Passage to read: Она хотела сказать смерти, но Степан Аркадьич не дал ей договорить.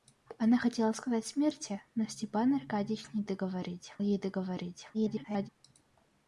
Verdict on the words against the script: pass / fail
fail